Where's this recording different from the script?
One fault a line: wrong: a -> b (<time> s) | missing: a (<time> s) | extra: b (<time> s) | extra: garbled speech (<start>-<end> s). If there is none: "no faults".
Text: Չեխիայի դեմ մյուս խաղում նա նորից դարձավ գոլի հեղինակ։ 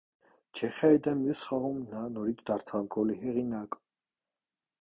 no faults